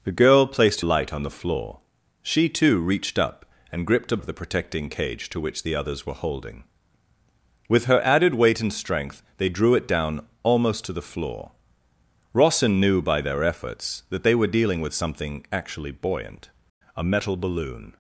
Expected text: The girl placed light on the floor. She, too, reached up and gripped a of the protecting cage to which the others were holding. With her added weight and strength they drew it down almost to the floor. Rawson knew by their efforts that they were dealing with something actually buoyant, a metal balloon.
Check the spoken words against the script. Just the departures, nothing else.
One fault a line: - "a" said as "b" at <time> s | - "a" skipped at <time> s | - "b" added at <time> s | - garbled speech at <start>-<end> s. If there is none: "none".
none